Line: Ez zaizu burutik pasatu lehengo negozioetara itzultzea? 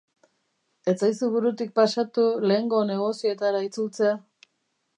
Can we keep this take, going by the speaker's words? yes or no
yes